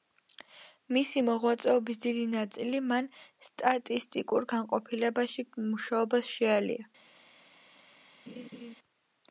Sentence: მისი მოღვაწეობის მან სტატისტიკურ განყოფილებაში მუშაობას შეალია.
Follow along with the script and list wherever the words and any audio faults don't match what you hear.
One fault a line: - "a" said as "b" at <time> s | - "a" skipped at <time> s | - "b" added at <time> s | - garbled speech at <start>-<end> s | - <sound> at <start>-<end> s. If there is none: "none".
- "დიდი ნაწილი" added at 2.0 s
- laugh at 8.3-8.7 s